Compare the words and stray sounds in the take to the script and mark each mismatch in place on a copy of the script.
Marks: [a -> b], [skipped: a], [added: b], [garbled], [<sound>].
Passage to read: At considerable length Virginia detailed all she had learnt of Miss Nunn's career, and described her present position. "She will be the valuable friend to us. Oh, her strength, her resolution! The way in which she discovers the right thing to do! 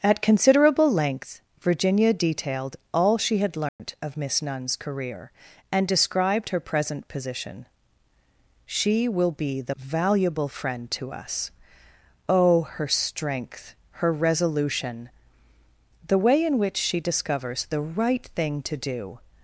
At considerable length Virginia detailed all she had learnt [dropout] of Miss Nunn's career, and described her present position. "She will be the valuable friend to us. Oh, her strength, her resolution! The way in which she discovers the right thing to do!